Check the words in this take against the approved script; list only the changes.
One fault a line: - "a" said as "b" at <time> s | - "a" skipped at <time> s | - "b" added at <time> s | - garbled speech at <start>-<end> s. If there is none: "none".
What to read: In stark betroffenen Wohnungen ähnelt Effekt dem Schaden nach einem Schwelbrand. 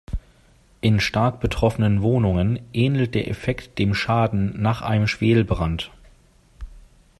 - "der" added at 3.1 s